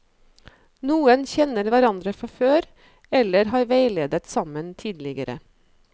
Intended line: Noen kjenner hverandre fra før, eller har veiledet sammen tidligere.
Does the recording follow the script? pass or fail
pass